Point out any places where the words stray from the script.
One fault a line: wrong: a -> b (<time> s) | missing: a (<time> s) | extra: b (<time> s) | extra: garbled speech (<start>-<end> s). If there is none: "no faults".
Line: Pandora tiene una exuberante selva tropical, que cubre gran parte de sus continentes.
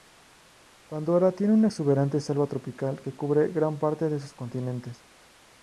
no faults